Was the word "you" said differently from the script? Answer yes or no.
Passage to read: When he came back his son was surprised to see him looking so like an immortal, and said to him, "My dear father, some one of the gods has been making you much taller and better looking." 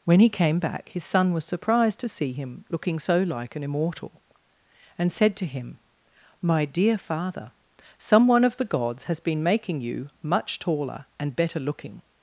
no